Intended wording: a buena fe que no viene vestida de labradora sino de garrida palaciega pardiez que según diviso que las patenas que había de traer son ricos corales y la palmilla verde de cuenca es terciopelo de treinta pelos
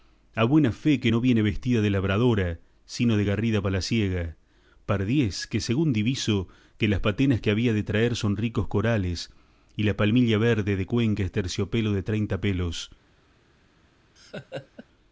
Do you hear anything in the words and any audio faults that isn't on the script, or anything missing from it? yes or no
yes